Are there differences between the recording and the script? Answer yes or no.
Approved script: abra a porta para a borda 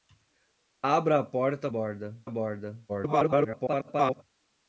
yes